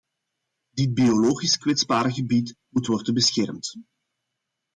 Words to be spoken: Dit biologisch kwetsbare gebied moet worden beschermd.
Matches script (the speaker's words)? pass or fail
pass